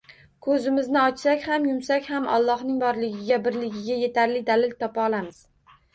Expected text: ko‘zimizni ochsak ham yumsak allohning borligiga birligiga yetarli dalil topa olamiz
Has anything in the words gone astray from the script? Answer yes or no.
yes